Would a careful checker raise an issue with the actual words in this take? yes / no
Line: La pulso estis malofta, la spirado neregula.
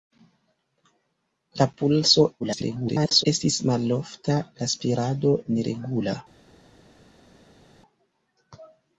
yes